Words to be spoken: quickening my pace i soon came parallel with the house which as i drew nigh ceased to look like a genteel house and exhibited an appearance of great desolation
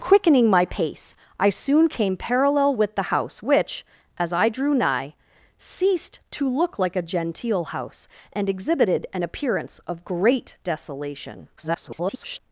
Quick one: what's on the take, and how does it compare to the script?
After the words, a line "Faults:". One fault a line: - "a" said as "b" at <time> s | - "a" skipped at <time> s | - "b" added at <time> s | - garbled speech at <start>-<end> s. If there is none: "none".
quickening my pace i soon came parallel with the house which as i drew nigh ceased to look like a genteel house and exhibited an appearance of great desolation [garbled]
Faults:
- garbled speech at 11.6-12.4 s